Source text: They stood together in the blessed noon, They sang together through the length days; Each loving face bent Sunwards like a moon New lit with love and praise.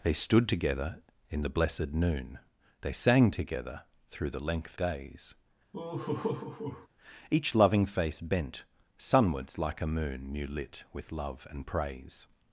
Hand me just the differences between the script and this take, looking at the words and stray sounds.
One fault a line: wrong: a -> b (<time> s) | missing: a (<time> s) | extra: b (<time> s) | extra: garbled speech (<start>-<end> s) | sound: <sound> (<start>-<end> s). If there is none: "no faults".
sound: laugh (5.7-6.9 s)